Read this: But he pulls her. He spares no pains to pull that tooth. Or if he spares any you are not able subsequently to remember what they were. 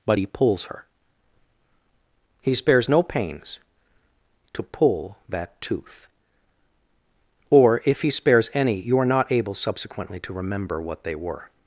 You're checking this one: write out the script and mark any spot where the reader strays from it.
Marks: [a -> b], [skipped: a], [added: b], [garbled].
But he pulls her. He spares no pains to pull that tooth. Or if he spares any you are not able subsequently to remember what they were.